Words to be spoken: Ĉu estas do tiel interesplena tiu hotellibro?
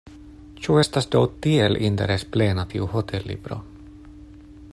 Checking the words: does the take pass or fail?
pass